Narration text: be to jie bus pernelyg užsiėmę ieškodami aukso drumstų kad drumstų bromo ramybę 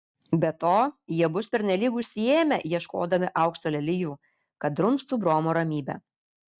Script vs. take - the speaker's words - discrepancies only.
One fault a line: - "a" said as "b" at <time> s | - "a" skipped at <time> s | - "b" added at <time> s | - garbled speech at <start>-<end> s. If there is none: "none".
- "drumstų" said as "lelijų" at 3.8 s